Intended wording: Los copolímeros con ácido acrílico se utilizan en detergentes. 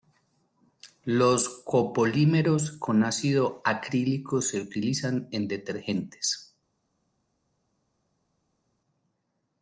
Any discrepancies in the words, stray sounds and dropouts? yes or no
no